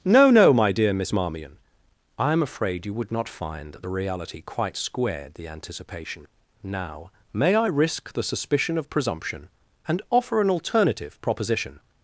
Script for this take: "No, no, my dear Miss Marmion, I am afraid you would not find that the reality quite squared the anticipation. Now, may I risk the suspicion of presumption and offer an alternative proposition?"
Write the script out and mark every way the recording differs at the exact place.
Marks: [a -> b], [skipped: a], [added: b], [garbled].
"No, no, my dear Miss Marmion, I am afraid you would not find that the reality quite squared the anticipation. Now, may I risk the suspicion of presumption and offer an alternative proposition?"